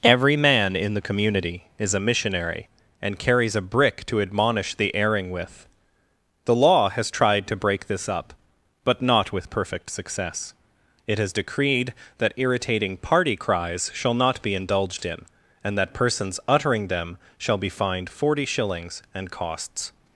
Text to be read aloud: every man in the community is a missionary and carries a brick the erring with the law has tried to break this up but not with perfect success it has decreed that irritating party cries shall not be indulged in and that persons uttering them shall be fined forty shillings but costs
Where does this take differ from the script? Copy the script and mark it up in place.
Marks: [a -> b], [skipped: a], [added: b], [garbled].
every man in the community is a missionary and carries a brick [added: to admonish] the erring with the law has tried to break this up but not with perfect success it has decreed that irritating party cries shall not be indulged in and that persons uttering them shall be fined forty shillings [but -> and] costs